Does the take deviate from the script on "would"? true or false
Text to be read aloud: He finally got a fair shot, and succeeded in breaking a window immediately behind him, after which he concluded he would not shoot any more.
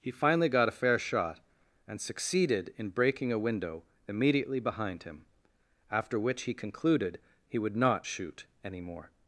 false